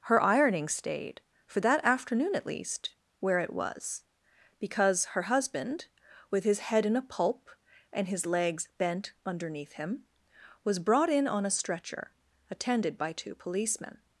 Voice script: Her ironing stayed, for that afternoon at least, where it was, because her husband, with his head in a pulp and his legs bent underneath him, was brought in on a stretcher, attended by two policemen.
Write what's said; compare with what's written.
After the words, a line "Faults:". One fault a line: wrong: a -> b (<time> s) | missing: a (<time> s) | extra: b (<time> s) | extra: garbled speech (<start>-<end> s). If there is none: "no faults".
Her ironing stayed, for that afternoon at least, where it was, because her husband, with his head in a pulp and his legs bent underneath him, was brought in on a stretcher, attended by two policemen.
Faults:
no faults